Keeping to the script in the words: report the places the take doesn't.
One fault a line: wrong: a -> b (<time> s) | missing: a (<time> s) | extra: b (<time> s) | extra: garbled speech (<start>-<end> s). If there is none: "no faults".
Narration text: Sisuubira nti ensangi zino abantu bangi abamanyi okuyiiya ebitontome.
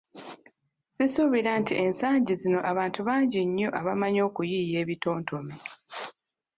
extra: nnyo (3.5 s)